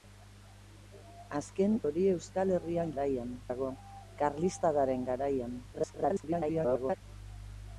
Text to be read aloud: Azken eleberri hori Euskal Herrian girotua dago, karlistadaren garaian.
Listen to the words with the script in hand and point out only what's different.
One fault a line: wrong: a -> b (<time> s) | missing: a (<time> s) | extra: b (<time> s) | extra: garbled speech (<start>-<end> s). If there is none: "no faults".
missing: eleberri (1.8 s)
wrong: girotua -> garaian (2.9 s)
extra: garbled speech (5.7-7.0 s)